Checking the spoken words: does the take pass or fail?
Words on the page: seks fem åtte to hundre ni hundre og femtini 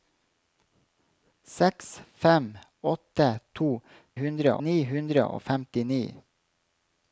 pass